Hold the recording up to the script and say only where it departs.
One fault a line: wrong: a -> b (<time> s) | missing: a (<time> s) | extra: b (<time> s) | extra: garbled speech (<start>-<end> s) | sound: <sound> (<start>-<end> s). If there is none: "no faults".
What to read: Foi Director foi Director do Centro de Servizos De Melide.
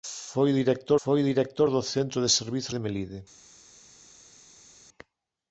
no faults